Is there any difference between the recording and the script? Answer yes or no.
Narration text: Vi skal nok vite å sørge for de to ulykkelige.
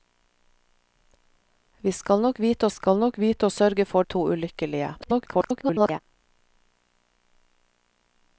yes